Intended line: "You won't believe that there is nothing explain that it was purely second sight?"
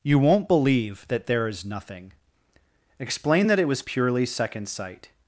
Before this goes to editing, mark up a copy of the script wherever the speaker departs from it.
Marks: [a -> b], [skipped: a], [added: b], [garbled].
"You won't believe that there is nothing explain that it was purely second sight?"